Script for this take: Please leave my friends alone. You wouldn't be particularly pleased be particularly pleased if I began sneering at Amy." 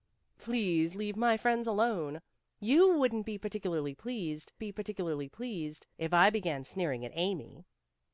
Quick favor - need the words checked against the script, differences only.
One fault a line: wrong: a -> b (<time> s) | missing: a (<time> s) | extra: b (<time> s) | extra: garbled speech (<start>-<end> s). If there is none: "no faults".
no faults